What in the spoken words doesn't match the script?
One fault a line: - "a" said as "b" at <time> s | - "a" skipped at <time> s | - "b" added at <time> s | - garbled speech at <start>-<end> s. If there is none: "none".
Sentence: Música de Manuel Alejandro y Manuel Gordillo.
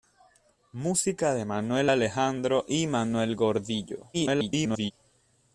- garbled speech at 4.1-4.9 s